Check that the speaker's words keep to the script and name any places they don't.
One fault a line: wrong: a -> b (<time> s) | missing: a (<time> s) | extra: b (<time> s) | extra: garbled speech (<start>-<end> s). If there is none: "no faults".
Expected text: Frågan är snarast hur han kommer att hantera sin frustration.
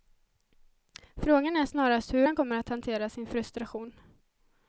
no faults